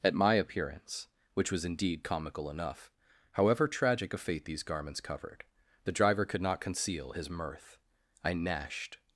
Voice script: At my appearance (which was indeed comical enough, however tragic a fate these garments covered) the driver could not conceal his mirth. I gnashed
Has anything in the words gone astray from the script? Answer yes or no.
no